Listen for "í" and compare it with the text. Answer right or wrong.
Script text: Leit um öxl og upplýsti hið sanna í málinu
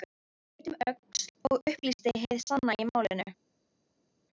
right